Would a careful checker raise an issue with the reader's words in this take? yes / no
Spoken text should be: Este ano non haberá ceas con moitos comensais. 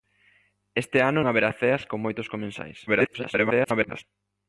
yes